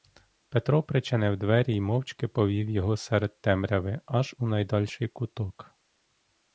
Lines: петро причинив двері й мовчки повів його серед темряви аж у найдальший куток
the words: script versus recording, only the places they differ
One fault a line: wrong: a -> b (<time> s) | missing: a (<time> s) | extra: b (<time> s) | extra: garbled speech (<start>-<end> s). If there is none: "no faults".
no faults